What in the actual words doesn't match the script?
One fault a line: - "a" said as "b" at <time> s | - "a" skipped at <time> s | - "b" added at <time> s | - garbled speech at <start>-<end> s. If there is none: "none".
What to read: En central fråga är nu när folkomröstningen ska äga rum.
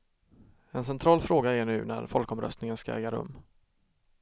none